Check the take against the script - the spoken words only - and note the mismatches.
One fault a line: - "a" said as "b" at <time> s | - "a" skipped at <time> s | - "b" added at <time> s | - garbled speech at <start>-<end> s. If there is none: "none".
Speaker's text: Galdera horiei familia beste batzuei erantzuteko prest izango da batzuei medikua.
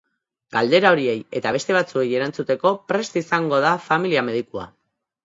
- "familia" said as "eta" at 1.4 s
- "batzuei" said as "familia" at 3.9 s